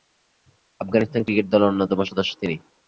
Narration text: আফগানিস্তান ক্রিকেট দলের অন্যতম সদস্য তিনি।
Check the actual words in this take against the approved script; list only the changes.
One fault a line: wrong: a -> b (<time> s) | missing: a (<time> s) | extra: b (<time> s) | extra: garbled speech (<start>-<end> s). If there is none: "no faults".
no faults